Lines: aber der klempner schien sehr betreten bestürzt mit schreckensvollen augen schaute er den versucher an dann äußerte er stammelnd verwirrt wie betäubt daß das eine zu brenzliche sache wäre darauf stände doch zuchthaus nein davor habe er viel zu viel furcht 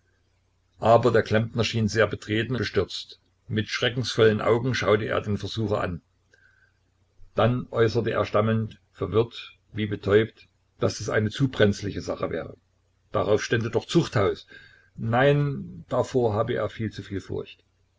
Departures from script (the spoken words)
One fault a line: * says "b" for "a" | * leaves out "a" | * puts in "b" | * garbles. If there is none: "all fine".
all fine